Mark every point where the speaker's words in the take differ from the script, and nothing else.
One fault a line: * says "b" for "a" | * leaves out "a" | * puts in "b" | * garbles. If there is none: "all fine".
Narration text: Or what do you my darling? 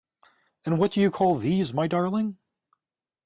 * says "And" for "Or"
* puts in "call these"